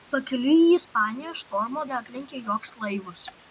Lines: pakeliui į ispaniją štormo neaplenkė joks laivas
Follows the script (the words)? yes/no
yes